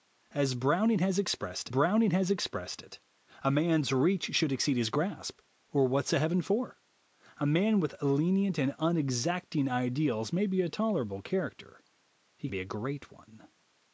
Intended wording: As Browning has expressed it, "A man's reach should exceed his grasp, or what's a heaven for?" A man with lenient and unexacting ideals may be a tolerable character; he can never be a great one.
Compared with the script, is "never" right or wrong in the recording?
wrong